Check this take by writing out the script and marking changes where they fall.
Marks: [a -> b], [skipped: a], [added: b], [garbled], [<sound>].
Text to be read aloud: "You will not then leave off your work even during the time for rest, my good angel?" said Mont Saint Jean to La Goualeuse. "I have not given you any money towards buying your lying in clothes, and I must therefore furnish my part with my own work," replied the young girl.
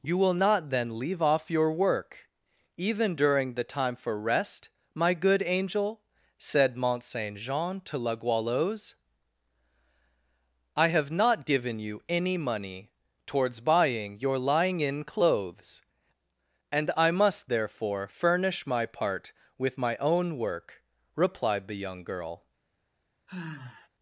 "You will not then leave off your work even during the time for rest, my good angel?" said Mont Saint Jean to La Goualeuse. "I have not given you any money towards buying your lying in clothes, and I must therefore furnish my part with my own work," replied the young girl. [sigh]